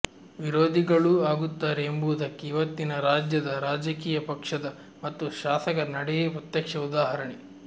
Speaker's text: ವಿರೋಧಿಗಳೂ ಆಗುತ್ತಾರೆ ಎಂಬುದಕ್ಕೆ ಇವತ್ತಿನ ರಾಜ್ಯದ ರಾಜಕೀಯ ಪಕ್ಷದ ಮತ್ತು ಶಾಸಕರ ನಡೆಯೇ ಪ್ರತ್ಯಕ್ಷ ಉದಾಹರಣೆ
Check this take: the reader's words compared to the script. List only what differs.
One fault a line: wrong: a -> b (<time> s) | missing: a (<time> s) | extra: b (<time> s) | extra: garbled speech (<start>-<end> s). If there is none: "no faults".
no faults